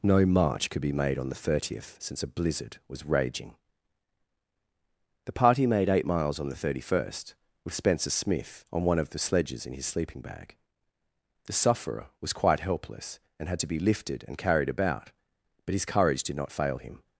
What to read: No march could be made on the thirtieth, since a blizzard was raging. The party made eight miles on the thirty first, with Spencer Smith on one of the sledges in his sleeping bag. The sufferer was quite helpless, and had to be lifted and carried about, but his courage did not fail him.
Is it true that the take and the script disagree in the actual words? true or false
false